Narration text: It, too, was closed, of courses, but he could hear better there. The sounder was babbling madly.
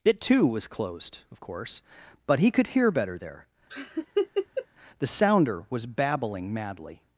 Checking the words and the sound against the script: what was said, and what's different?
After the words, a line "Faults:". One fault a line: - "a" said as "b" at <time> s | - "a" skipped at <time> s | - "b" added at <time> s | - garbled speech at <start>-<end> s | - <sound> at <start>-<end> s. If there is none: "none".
It, too, was closed, of course, but he could hear better there. The sounder was babbling madly.
Faults:
- "courses" said as "course" at 1.4 s
- laugh at 3.7-4.7 s